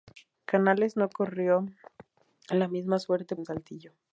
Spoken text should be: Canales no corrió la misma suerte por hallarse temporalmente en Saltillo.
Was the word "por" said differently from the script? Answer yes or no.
yes